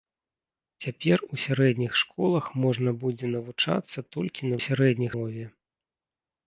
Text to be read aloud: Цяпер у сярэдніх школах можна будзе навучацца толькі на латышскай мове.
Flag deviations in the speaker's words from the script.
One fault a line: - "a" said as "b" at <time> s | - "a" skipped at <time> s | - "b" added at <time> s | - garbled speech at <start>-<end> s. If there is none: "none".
- "латышскай" said as "сярэдніх" at 4.6 s